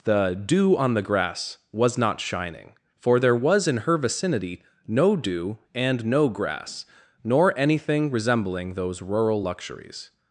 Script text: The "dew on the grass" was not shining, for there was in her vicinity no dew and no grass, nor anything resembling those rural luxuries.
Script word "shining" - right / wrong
right